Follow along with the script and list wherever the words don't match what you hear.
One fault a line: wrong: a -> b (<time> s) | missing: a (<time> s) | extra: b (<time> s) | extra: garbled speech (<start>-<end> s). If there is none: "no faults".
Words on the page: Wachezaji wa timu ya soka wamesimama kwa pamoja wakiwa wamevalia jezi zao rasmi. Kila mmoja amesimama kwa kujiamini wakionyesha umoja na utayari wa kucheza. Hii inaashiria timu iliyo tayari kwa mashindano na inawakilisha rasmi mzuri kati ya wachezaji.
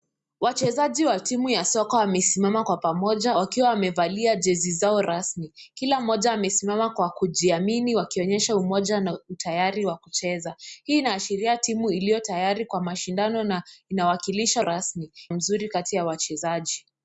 no faults